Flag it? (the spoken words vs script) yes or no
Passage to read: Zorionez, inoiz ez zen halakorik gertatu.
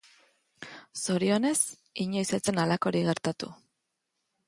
no